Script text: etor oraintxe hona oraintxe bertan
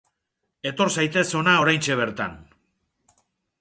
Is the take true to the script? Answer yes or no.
no